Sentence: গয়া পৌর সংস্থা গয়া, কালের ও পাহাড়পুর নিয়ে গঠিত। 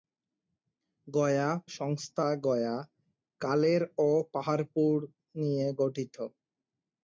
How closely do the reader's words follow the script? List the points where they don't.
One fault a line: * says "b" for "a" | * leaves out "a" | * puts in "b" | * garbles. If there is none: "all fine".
* leaves out "পৌর"